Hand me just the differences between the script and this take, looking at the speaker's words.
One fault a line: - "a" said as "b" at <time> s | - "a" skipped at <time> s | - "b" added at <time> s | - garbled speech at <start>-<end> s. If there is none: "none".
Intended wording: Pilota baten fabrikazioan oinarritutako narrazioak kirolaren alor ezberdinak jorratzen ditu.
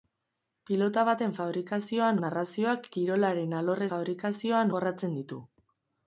- "oinarritutako" skipped at 2.2 s
- "ezberdinak" said as "fabrikazioan" at 3.9 s